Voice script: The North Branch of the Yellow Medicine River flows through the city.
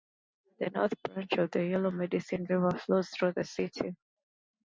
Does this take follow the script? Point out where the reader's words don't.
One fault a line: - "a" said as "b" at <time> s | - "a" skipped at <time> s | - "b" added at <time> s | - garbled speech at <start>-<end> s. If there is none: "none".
none